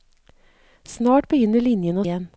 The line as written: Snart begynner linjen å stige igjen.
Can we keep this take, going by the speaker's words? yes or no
no